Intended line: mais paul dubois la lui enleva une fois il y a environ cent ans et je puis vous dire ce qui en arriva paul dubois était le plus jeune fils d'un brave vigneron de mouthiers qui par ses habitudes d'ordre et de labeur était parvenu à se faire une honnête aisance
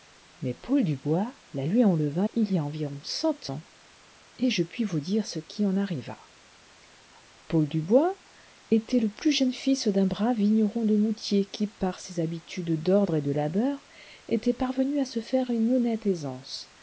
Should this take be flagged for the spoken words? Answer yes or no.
yes